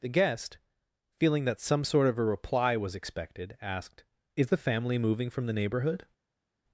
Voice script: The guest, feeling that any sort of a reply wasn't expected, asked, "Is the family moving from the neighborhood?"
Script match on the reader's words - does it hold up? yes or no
no